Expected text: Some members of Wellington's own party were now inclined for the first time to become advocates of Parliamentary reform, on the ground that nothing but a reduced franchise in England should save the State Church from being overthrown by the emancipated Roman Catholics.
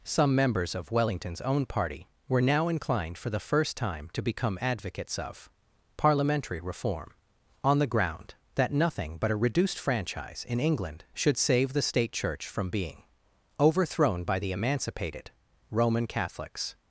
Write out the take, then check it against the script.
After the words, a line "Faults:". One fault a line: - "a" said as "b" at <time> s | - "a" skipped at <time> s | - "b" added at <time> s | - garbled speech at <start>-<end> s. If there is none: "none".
Some members of Wellington's own party were now inclined for the first time to become advocates of Parliamentary reform, on the ground that nothing but a reduced franchise in England should save the State Church from being overthrown by the emancipated Roman Catholics.
Faults:
none